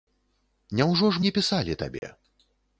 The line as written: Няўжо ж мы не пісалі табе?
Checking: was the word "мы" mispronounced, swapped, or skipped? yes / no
yes